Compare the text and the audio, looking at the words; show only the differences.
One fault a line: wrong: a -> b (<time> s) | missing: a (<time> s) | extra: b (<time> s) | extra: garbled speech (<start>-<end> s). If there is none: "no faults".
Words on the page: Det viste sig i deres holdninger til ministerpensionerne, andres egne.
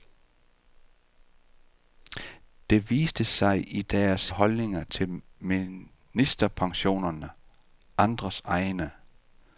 no faults